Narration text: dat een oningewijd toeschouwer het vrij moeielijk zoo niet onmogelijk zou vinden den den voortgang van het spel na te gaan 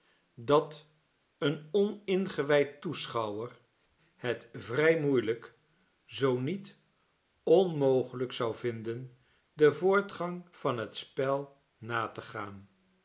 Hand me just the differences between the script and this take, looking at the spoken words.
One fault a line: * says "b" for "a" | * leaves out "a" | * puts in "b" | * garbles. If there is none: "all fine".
* leaves out "den"